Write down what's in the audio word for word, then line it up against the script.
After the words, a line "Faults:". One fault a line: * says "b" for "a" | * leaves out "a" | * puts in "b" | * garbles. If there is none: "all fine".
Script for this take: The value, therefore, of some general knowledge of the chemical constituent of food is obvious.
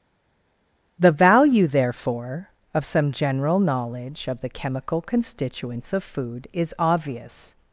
The value, therefore, of some general knowledge of the chemical constituents of food is obvious.
Faults:
* says "constituents" for "constituent"